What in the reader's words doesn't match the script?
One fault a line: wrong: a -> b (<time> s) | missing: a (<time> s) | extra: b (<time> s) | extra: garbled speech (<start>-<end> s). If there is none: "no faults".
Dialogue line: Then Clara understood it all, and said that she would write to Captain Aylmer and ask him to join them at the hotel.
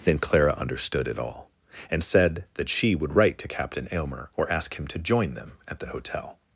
wrong: and -> or (4.3 s)